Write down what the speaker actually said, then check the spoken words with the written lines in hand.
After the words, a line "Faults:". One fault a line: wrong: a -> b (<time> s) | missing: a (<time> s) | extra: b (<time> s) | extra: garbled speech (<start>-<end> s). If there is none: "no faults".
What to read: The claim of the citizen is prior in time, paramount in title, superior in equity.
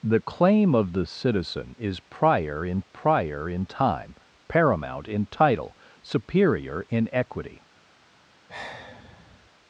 The claim of the citizen is prior in prior in time, paramount in title, superior in equity.
Faults:
extra: prior in (2.8 s)